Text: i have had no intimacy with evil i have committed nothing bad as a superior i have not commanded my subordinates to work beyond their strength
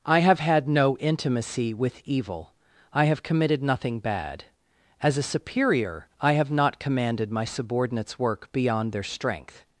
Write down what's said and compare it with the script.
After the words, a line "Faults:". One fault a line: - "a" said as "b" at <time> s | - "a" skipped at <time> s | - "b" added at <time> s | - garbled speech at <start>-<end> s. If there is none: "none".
i have had no intimacy with evil i have committed nothing bad as a superior i have not commanded my subordinates work beyond their strength
Faults:
- "to" skipped at 8.2 s